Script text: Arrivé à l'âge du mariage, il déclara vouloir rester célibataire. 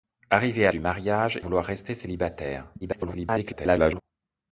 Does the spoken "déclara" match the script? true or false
false